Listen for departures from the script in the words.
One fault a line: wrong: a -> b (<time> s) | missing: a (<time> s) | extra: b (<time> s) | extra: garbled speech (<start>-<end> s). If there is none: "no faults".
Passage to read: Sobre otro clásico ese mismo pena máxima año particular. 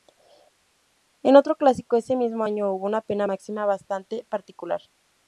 wrong: Sobre -> En (1.2 s)
extra: año hubo una (2.4 s)
wrong: año -> bastante (3.6 s)